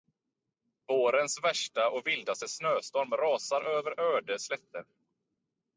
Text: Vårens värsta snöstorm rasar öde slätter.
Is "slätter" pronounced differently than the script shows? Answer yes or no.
no